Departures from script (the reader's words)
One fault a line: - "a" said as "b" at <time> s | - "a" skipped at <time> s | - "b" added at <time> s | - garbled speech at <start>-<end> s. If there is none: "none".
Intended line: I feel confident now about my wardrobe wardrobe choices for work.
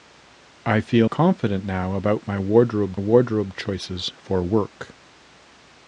none